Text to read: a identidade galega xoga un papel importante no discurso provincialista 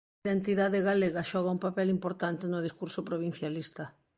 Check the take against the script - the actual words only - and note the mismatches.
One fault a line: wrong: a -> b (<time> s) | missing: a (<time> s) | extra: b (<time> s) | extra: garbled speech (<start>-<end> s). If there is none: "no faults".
no faults